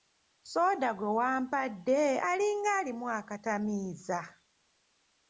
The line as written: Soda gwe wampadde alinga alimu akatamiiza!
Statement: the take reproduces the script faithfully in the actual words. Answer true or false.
true